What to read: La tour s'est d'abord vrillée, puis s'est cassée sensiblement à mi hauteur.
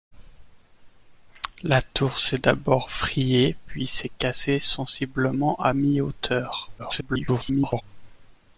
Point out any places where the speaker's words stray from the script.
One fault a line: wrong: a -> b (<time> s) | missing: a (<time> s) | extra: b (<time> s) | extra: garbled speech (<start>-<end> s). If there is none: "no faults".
extra: garbled speech (6.8-7.8 s)